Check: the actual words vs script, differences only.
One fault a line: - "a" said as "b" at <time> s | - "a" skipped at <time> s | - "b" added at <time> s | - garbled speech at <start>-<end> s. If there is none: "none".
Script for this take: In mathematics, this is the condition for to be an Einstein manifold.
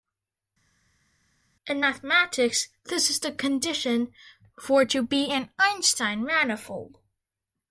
none